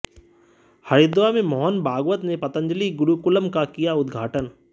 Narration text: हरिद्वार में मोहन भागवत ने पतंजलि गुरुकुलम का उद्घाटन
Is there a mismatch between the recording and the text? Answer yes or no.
yes